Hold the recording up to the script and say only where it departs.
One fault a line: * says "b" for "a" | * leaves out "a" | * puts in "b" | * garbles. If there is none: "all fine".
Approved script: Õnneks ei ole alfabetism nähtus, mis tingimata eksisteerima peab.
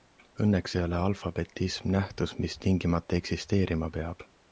all fine